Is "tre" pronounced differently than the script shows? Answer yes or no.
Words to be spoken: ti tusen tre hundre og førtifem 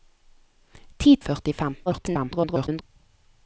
yes